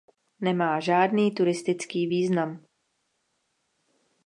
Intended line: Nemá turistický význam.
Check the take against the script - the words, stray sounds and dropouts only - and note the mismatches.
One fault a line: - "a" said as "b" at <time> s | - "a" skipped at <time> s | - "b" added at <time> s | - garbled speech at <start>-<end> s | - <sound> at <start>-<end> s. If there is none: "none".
- "žádný" added at 0.8 s